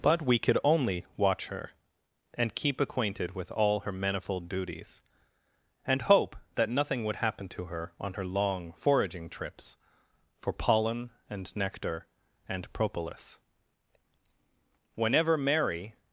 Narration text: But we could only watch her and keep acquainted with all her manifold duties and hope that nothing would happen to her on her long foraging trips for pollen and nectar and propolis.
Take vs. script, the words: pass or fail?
fail